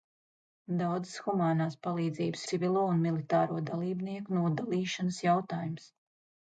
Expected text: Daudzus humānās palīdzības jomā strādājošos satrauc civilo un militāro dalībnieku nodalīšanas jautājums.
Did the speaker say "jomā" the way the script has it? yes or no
no